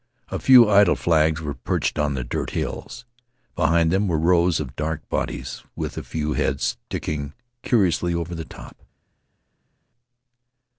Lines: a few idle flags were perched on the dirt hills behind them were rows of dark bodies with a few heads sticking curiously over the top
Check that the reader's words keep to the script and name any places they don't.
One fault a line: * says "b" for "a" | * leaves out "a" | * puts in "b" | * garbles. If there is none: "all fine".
all fine